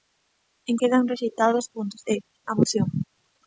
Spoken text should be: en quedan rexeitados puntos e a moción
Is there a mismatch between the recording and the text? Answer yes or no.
no